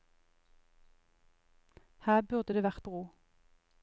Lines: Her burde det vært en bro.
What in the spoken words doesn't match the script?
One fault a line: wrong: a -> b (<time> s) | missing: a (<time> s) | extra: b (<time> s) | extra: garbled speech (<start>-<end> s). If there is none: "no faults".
missing: en (2.9 s)